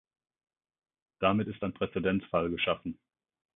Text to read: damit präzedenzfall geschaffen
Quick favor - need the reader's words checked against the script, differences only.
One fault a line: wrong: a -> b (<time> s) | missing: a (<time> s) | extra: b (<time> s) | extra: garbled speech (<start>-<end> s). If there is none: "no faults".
extra: ist ein (1.5 s)